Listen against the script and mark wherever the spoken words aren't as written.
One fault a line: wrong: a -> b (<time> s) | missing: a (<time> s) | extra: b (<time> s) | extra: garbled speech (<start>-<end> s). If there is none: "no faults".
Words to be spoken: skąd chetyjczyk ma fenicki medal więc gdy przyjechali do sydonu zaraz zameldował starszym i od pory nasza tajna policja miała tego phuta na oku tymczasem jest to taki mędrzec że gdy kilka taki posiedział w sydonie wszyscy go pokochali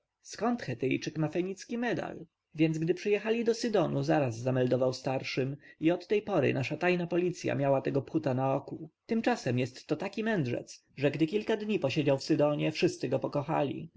extra: tej (6.1 s)
wrong: taki -> dni (11.6 s)